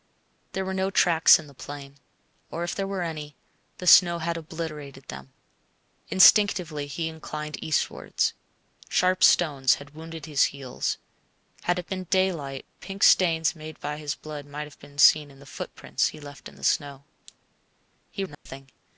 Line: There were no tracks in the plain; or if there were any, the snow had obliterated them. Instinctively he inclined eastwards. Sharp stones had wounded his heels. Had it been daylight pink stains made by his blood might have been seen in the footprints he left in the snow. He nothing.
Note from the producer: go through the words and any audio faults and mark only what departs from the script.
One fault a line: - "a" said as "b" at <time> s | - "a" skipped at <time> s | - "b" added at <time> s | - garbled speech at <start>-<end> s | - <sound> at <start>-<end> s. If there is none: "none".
- dropout at 18.3-18.5 s